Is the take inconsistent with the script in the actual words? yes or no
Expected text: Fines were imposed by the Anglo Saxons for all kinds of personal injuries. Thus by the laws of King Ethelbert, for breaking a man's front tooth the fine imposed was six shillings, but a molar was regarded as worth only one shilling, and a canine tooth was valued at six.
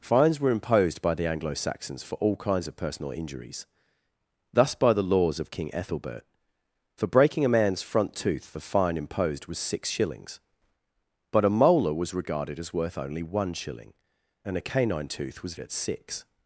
yes